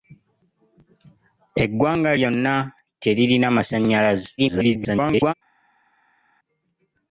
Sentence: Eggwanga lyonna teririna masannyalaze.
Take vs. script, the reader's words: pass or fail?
fail